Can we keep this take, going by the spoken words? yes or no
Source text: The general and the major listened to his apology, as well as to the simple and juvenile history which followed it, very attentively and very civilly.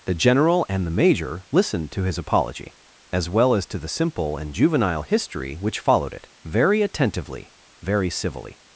no